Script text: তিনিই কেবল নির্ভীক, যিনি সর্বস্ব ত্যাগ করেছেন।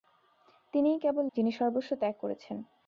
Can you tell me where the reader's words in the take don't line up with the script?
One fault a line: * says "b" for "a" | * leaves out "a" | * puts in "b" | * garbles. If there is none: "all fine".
* leaves out "নির্ভীক"